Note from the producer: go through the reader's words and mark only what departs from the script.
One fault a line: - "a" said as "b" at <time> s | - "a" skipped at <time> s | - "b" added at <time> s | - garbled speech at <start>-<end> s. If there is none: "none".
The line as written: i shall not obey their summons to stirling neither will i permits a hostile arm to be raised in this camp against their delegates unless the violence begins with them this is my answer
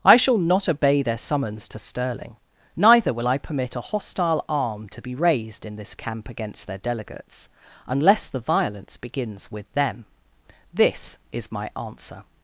- "permits" said as "permit" at 3.4 s